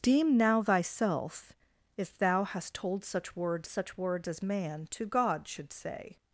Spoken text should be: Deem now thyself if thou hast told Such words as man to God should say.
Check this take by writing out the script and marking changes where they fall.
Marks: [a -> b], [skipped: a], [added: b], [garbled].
Deem now thyself if thou hast told Such words [added: Such words] as man to God should say.